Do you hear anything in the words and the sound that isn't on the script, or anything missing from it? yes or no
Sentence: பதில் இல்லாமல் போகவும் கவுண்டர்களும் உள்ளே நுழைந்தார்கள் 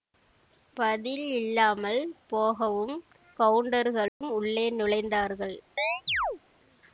yes